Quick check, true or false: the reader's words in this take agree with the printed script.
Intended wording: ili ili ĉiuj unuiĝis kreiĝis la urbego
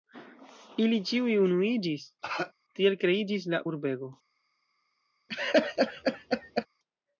false